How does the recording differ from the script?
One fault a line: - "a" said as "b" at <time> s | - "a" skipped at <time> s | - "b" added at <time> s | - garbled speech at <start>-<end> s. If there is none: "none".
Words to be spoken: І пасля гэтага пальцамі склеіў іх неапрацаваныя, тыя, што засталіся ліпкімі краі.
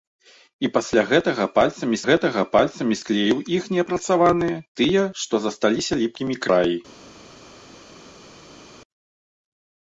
- "гэтага пальцамі" added at 2.1 s